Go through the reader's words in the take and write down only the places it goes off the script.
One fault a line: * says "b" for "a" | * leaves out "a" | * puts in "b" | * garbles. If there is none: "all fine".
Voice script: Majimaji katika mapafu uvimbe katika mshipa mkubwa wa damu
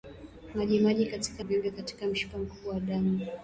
* leaves out "mapafu"